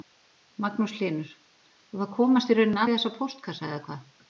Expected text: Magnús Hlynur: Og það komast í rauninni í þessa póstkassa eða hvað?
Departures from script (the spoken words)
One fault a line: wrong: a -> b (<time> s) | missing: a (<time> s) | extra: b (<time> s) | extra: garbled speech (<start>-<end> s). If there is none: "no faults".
no faults